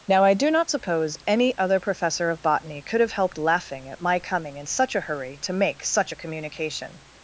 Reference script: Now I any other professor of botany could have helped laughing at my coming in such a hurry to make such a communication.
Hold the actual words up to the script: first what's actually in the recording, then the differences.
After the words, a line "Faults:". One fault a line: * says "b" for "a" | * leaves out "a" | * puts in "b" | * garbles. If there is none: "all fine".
Now I do not suppose any other professor of botany could have helped laughing at my coming in such a hurry to make such a communication.
Faults:
* puts in "do not suppose"